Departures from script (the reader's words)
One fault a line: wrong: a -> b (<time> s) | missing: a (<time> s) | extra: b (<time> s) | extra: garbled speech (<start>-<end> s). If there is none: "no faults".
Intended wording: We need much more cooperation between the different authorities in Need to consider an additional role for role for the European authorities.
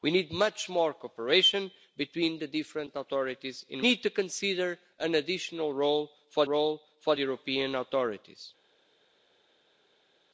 no faults